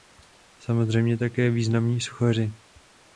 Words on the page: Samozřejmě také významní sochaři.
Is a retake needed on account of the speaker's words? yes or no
no